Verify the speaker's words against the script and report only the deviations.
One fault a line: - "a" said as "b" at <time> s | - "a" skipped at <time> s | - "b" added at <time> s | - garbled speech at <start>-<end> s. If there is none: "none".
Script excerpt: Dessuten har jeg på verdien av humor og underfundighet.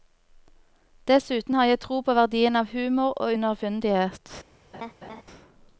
- "tro" added at 1.8 s